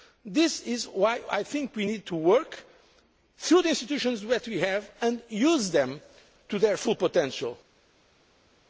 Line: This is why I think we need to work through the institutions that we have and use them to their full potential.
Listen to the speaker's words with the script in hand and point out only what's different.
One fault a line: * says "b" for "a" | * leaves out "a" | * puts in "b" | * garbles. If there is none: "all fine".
all fine